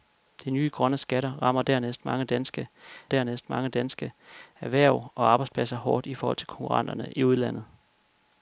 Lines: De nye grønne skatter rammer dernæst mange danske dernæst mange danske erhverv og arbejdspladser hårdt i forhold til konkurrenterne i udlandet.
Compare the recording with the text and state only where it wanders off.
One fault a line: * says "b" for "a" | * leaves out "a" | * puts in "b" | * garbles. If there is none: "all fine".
all fine